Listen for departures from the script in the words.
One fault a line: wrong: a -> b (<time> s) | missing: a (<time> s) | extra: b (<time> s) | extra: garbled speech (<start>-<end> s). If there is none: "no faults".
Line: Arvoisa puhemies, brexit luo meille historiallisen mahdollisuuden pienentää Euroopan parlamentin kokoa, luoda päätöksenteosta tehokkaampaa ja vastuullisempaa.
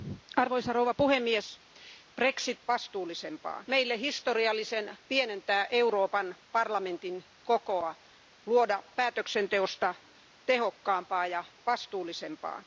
wrong: luo -> vastuullisempaa (2.7 s)
missing: mahdollisuuden (5.0 s)